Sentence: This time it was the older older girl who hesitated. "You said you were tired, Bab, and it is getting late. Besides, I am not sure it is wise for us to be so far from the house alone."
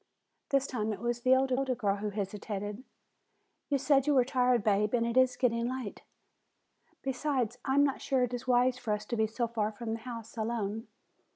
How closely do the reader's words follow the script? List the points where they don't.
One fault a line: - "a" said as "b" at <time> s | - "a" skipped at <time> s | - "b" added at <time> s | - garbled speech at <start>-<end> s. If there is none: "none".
none